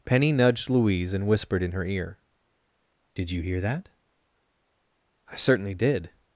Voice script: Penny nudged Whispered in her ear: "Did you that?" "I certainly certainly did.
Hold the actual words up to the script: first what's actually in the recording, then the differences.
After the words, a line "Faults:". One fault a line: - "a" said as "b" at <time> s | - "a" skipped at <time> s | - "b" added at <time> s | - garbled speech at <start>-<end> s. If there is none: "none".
Penny nudged Louise and whispered in her ear: "Did you hear that?" "I certainly did.
Faults:
- "Louise and" added at 0.7 s
- "hear" added at 3.4 s
- "certainly" skipped at 5.7 s